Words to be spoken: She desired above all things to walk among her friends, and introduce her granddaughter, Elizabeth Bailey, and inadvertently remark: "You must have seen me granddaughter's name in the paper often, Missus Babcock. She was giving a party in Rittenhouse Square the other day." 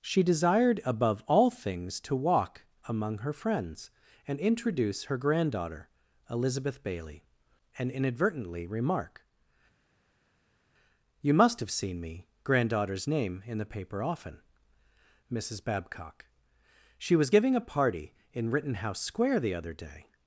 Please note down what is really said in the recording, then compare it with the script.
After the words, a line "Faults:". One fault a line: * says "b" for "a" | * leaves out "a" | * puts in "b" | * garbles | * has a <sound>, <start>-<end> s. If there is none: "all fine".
She desired above all things to walk among her friends, and introduce her granddaughter, Elizabeth Bailey, and inadvertently remark: "You must have seen me granddaughter's name in the paper often, Missus Babcock. She was giving a party in Rittenhouse Square the other day."
Faults:
all fine